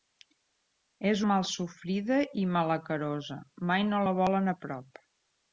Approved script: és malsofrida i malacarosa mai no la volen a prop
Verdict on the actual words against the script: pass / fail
pass